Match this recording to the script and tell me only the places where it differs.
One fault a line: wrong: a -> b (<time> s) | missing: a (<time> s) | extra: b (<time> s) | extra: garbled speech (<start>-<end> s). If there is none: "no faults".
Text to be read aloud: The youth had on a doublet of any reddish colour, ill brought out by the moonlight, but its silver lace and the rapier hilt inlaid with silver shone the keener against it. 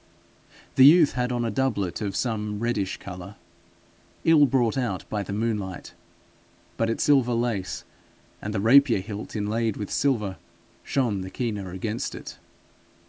wrong: any -> some (2.1 s)